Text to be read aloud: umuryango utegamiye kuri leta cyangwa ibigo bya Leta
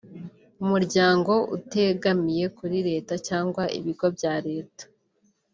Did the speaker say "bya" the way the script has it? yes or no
yes